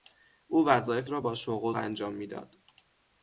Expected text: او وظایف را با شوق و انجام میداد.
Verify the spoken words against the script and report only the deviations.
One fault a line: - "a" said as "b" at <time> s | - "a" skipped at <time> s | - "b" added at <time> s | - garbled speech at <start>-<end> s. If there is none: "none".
none